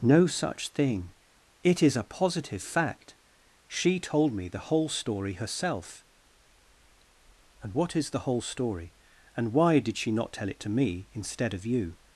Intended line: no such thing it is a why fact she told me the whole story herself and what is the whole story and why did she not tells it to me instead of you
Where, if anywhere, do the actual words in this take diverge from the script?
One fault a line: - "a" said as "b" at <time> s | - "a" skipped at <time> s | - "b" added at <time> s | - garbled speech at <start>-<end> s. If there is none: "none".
- "why" said as "positive" at 2.0 s
- "tells" said as "tell" at 10.3 s